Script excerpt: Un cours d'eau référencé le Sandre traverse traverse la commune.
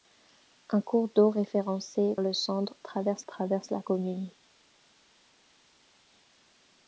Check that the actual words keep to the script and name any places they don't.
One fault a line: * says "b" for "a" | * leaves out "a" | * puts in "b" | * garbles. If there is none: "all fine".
all fine